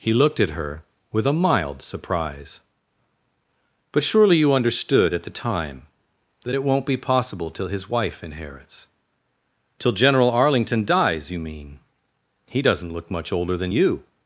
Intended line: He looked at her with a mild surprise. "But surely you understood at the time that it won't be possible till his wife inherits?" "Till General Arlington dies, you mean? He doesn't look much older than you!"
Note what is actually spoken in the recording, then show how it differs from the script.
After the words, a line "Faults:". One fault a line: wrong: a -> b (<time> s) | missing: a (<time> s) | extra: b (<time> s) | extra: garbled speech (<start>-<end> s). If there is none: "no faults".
He looked at her with a mild surprise. "But surely you understood at the time that it won't be possible till his wife inherits?" "Till General Arlington dies, you mean? He doesn't look much older than you!"
Faults:
no faults